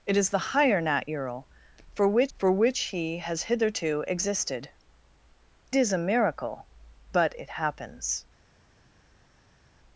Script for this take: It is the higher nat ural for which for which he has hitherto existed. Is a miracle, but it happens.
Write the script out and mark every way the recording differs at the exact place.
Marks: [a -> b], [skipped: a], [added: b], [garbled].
It is the higher nat ural for which for which he has hitherto existed. Is a miracle, but it happens.